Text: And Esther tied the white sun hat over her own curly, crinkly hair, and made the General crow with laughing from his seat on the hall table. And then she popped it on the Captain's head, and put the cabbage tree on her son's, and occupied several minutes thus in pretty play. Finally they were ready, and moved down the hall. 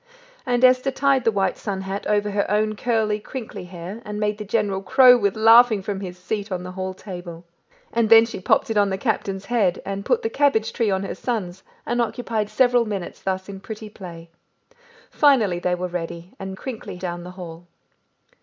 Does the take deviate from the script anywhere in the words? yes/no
yes